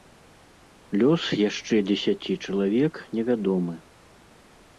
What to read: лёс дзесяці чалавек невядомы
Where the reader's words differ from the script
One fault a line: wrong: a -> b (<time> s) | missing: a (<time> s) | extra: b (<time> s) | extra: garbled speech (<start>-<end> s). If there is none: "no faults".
extra: яшчэ (1.5 s)